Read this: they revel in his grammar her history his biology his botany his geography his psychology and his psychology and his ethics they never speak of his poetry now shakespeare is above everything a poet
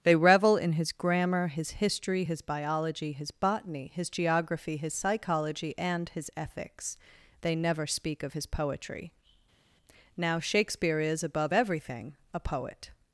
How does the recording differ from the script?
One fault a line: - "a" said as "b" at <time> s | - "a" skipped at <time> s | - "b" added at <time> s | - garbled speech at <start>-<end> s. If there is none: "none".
- "her" said as "his" at 1.5 s
- "psychology and his" skipped at 6.3 s